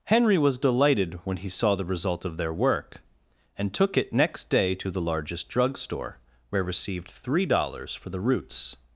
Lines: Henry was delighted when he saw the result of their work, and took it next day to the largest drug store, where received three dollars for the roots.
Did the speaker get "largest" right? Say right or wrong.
right